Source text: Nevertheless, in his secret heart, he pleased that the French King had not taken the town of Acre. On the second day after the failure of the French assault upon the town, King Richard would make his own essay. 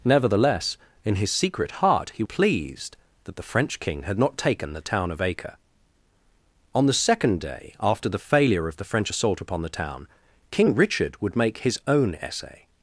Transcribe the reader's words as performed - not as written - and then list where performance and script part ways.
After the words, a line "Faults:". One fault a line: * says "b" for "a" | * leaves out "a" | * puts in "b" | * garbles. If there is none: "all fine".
Nevertheless, in his secret heart, he pleased that the French King had not taken the town of Acre. On the second day after the failure of the French assault upon the town, King Richard would make his own essay.
Faults:
all fine